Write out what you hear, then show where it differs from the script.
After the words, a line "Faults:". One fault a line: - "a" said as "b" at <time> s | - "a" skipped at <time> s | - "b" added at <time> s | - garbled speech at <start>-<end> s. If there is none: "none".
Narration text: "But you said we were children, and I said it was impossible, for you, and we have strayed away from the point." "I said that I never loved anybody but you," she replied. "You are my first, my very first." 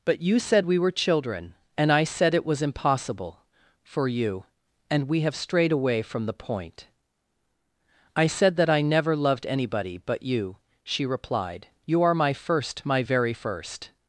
"But you said we were children, and I said it was impossible, for you, and we have strayed away from the point." "I said that I never loved anybody but you," she replied. "You are my first, my very first."
Faults:
none